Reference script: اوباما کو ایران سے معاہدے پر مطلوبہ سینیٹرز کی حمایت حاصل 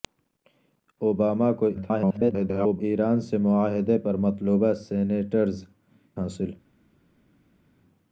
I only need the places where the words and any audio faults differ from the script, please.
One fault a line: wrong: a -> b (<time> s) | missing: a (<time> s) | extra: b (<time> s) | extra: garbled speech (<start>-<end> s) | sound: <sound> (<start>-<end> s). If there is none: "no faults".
extra: garbled speech (1.7-2.8 s)
missing: کی حمایت (5.6 s)